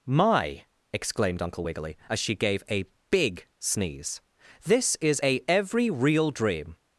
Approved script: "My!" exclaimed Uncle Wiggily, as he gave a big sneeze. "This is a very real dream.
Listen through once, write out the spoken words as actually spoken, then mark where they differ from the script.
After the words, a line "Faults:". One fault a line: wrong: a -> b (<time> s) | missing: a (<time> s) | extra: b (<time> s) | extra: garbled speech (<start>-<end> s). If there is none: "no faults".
"My!" exclaimed Uncle Wiggily, as she gave a big sneeze. "This is a every real dream.
Faults:
wrong: he -> she (2.2 s)
wrong: very -> every (5.5 s)